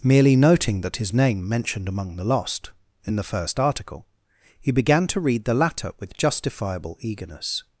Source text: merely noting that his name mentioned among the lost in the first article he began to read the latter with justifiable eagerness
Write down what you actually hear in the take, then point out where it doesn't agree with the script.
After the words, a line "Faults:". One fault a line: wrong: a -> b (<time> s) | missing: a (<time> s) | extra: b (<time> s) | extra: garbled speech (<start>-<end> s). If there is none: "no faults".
merely noting that his name mentioned among the lost in the first article he began to read the latter with justifiable eagerness
Faults:
no faults